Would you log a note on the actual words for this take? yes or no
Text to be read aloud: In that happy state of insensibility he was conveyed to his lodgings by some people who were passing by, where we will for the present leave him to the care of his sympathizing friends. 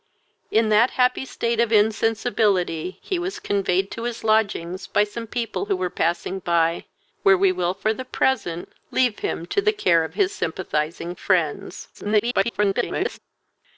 yes